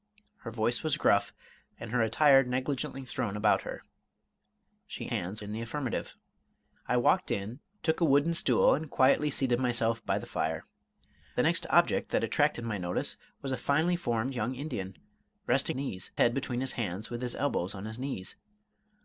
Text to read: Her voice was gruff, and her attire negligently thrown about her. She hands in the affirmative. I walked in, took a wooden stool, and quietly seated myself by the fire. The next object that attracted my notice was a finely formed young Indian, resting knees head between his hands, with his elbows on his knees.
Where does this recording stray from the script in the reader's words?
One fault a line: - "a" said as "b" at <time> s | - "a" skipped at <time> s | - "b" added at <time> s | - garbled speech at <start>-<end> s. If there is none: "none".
none